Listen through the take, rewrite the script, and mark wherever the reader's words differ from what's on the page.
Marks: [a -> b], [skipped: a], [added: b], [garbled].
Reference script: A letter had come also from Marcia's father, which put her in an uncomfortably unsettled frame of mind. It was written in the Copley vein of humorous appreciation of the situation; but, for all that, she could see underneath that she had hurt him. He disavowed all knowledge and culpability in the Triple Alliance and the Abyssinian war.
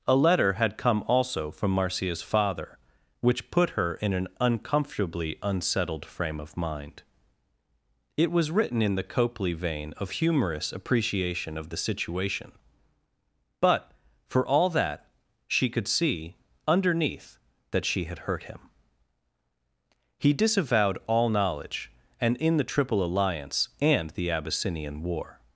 A letter had come also from Marcia's father, which put her in an uncomfortably unsettled frame of mind. It was written in the Copley vein of humorous appreciation of the situation; but, for all that, she could see underneath that she had hurt him. He disavowed all knowledge and [skipped: culpability] in the Triple Alliance and the Abyssinian war.